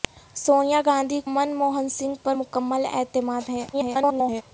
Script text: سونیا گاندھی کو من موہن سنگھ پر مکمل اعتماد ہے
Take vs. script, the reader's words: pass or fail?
fail